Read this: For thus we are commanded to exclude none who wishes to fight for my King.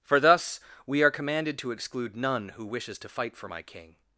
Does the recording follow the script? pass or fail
pass